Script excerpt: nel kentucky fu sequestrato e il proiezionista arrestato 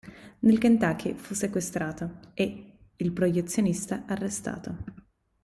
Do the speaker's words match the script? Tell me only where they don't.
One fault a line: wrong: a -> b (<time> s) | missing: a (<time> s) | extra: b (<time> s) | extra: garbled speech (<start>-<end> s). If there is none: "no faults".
no faults